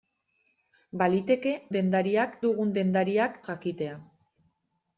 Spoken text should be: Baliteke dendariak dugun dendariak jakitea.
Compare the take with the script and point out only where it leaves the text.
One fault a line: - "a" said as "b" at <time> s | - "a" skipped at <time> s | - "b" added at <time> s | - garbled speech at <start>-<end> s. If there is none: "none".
none